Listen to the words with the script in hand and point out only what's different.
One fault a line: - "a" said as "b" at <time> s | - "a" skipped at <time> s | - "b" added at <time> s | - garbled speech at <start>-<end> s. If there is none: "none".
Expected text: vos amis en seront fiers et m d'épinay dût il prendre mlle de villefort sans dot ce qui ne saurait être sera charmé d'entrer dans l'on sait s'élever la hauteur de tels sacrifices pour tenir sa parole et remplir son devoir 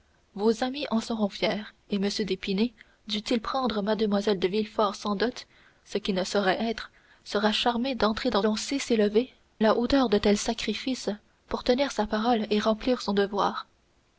none